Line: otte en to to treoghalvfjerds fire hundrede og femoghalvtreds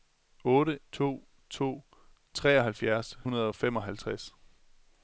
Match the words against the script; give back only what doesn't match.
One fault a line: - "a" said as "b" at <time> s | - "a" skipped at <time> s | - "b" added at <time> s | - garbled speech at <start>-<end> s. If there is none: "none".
- "en" skipped at 0.8 s
- "fire" skipped at 3.2 s